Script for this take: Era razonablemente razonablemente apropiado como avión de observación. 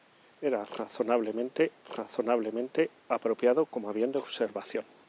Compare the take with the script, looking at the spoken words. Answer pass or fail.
pass